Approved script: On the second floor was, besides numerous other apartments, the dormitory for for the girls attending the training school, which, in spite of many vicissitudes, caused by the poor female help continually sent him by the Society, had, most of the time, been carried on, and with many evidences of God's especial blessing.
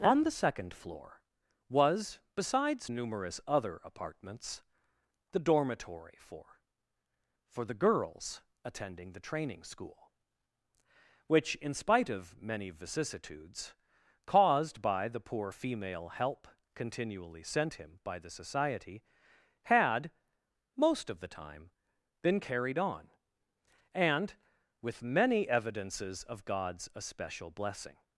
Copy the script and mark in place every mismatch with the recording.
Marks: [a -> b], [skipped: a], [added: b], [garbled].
On the second floor was, besides numerous other apartments, the dormitory for for the girls attending the training school, which, in spite of many vicissitudes, caused by the poor female help continually sent him by the Society, had, most of the time, been carried on, and with many evidences of God's especial blessing.